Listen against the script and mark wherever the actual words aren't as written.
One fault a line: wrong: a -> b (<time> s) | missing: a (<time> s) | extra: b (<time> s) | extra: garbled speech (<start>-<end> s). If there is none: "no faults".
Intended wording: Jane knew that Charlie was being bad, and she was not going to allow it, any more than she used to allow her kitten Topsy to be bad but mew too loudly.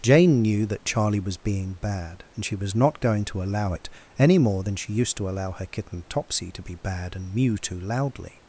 wrong: but -> and (7.2 s)